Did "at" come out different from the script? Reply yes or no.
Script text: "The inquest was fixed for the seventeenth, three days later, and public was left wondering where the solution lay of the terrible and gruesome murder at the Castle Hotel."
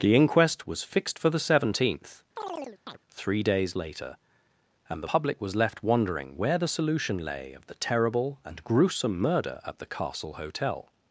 no